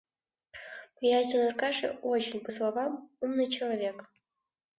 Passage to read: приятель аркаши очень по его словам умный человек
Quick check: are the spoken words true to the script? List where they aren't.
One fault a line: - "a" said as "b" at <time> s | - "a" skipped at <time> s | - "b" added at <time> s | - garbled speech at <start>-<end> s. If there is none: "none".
- "его" skipped at 2.5 s